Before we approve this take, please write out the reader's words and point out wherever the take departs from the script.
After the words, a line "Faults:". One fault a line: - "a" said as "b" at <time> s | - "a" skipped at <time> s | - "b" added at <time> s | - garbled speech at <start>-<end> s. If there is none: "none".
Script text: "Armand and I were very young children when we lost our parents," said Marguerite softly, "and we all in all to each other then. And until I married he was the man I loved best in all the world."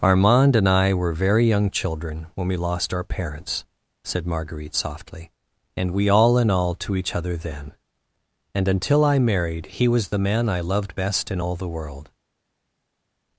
"Armand and I were very young children when we lost our parents," said Marguerite softly, "and we all in all to each other then. And until I married he was the man I loved best in all the world."
Faults:
none